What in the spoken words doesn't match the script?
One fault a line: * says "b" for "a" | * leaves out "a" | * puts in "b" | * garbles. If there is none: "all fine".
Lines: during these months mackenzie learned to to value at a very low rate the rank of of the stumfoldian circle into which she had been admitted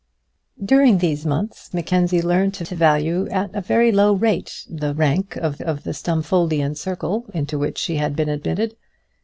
all fine